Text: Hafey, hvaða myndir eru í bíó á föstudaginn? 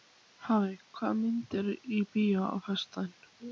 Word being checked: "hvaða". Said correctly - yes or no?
yes